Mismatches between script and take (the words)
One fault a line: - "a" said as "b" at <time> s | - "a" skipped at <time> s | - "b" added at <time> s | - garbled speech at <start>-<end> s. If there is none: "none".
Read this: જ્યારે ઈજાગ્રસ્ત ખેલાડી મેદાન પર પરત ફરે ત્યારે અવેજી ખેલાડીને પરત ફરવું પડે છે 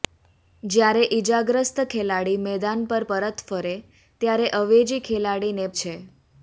- "પરત ફરવું પડે" skipped at 5.7 s